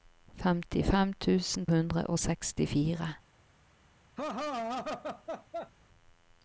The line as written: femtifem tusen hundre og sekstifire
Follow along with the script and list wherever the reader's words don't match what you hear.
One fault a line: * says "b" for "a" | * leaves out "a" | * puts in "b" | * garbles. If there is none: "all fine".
all fine